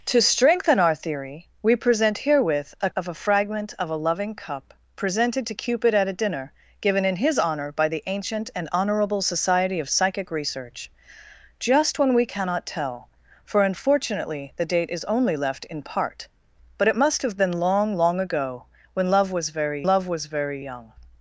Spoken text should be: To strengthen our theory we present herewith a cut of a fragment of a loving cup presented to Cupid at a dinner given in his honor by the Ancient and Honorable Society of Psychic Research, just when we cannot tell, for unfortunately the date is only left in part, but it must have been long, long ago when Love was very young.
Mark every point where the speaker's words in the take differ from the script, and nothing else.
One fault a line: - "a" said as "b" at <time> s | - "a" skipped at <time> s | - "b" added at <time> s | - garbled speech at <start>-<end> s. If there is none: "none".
- "cut" skipped at 2.9 s
- "Love was very" added at 19.9 s